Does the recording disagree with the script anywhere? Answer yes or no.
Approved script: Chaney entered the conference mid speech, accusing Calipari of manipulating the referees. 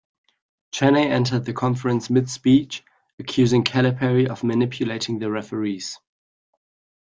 no